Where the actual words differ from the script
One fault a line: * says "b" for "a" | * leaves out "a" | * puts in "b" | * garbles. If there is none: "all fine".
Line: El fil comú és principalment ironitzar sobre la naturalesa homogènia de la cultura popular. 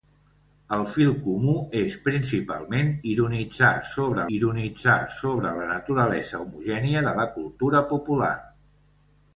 * puts in "ironitzar sobre"